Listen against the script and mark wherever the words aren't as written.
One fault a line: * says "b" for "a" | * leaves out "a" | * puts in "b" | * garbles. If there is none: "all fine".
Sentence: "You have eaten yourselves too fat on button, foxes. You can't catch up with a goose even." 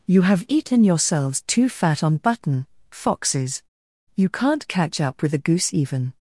all fine